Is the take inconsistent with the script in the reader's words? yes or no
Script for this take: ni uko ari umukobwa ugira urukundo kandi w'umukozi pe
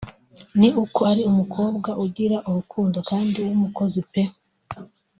no